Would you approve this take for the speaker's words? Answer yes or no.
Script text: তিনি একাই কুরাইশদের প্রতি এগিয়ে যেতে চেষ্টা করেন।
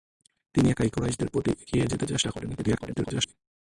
no